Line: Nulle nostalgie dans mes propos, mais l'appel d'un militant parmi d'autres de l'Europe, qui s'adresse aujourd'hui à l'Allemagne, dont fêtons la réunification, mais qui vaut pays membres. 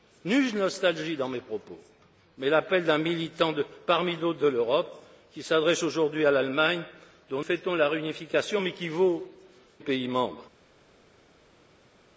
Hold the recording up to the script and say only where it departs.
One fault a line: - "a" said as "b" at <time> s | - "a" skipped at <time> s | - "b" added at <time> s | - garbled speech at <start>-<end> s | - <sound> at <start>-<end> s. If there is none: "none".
none